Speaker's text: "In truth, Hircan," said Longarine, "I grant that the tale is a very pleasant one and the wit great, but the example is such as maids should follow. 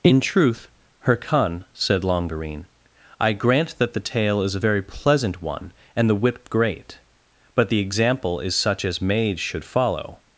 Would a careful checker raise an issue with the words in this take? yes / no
no